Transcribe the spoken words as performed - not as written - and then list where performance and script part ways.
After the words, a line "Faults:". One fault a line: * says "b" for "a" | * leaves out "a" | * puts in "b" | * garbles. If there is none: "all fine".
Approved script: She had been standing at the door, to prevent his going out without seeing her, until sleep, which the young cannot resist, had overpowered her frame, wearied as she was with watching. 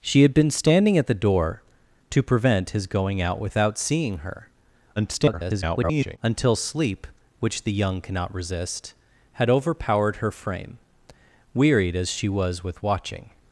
She had been standing at the door, to prevent his going out without seeing her, [garbled] until sleep, which the young cannot resist, had overpowered her frame, wearied as she was with watching.
Faults:
* garbles